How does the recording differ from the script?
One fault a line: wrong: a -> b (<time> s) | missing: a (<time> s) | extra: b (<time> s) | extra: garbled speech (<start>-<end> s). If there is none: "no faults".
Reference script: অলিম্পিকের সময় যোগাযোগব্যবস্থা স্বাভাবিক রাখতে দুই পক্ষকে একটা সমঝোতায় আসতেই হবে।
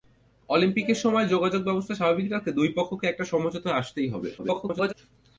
extra: garbled speech (4.4-4.9 s)